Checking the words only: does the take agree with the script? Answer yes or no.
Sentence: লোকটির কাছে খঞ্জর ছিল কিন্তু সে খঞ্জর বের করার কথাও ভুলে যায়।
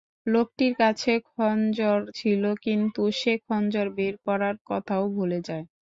yes